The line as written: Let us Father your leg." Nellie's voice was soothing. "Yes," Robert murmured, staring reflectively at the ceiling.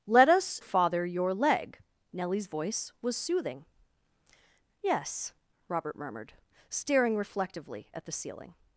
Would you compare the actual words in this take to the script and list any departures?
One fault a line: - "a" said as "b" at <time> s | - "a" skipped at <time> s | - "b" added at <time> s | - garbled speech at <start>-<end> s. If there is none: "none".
none